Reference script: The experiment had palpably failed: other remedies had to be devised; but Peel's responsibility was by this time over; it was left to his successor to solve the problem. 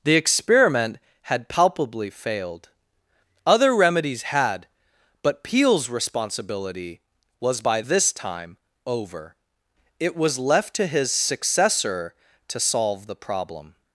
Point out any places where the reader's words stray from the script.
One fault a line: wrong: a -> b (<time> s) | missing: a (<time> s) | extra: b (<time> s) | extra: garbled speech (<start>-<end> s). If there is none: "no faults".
missing: to be devised (4.7 s)